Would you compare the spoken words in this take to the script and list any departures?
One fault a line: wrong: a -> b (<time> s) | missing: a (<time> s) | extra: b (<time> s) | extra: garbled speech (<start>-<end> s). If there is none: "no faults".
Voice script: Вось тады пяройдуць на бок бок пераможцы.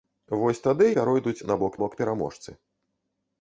no faults